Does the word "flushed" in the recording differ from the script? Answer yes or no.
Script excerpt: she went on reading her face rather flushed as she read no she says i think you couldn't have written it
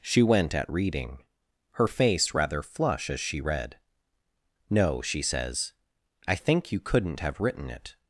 yes